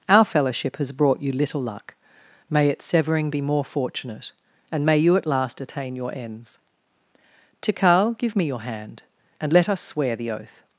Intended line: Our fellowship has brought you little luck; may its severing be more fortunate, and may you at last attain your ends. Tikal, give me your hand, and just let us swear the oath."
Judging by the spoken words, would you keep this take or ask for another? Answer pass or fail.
fail